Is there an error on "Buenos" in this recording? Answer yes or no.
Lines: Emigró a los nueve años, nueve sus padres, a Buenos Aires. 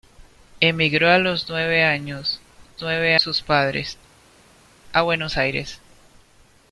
no